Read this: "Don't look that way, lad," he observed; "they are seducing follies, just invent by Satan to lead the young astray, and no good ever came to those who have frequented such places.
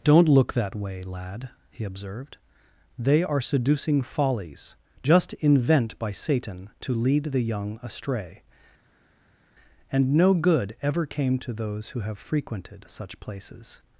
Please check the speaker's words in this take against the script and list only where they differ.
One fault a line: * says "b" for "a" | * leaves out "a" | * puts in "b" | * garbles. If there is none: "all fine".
all fine